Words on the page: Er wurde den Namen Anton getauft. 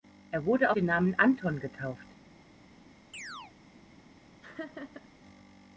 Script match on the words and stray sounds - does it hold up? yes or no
no